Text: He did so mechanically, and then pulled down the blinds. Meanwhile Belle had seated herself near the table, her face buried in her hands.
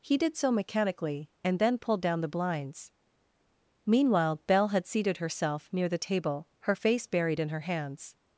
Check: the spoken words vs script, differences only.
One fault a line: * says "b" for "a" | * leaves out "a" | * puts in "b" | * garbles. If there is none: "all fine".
all fine